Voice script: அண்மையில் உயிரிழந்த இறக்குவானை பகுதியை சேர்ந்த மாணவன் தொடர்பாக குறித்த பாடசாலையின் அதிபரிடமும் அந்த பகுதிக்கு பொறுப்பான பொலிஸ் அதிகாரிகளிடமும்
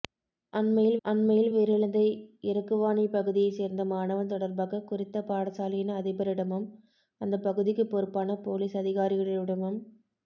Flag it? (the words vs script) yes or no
yes